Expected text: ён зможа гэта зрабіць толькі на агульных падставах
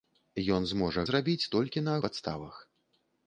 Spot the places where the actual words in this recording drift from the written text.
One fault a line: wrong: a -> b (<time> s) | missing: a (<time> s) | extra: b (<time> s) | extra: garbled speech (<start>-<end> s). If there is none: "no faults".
missing: гэта (1.0 s)
missing: агульных (2.0 s)